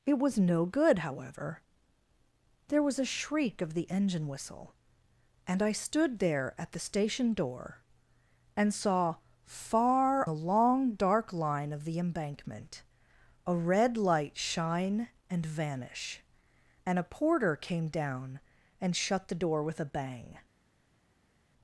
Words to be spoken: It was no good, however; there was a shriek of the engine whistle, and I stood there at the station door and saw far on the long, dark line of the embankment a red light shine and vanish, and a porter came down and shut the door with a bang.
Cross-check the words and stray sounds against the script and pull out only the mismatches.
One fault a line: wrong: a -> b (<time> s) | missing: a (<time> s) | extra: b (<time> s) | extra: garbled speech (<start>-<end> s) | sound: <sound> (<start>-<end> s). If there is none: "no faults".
missing: on (10.3 s)